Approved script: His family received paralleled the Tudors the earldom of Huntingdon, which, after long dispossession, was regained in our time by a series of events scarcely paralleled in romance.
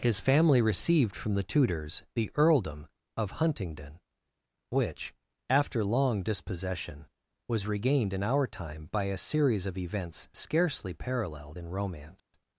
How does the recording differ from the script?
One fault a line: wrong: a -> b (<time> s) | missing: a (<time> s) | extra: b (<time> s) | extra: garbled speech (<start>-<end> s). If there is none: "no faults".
wrong: paralleled -> from (1.1 s)